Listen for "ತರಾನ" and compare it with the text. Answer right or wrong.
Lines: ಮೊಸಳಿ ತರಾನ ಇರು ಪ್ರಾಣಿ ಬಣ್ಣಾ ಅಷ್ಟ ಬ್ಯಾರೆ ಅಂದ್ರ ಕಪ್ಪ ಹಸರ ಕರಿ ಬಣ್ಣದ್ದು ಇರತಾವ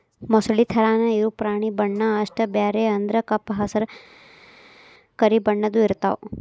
right